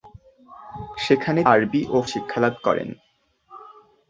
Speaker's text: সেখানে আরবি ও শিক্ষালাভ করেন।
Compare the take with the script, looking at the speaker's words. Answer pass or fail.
pass